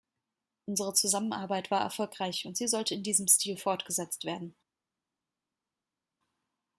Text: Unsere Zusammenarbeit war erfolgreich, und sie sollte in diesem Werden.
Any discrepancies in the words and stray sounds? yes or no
yes